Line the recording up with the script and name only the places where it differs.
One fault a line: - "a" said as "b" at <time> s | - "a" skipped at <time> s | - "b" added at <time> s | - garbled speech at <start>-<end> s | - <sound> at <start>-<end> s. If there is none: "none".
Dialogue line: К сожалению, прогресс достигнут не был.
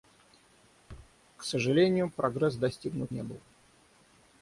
- thud at 0.9-1.1 s